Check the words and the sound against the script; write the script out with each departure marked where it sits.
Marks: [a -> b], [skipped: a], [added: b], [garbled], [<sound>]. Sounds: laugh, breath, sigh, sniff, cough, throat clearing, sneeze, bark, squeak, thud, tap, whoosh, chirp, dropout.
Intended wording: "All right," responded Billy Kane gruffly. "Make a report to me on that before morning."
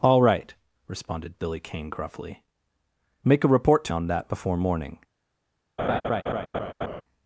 "All right," responded Billy Kane gruffly. "Make a report to [skipped: me] on that before morning." [laugh]